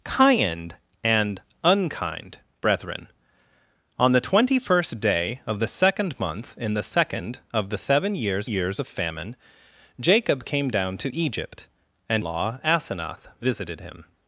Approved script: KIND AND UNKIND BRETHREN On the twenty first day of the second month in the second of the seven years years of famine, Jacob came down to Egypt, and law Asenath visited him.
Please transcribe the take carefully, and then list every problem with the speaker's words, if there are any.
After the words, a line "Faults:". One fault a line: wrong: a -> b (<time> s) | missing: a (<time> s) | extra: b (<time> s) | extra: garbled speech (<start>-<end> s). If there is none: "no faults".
KIND AND UNKIND BRETHREN On the twenty first day of the second month in the second of the seven years years of famine, Jacob came down to Egypt, and law Asenath visited him.
Faults:
no faults